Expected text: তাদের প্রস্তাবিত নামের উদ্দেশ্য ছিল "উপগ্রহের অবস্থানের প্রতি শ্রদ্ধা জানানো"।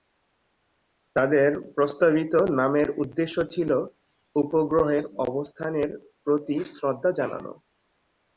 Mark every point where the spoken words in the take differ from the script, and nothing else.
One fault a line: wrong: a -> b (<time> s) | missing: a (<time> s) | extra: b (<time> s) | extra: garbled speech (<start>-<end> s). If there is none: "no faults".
no faults